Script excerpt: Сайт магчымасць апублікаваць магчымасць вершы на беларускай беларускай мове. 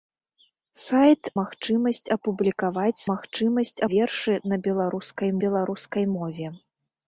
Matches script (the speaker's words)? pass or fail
pass